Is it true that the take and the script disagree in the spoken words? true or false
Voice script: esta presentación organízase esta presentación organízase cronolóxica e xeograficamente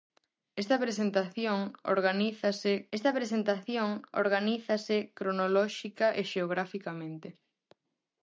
false